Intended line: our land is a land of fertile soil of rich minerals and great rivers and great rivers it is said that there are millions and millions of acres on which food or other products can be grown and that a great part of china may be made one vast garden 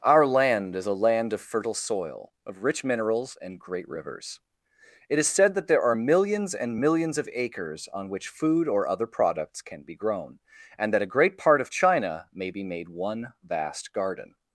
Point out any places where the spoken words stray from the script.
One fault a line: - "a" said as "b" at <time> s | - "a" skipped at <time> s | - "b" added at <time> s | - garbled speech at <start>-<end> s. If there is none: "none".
- "and great rivers" skipped at 4.4 s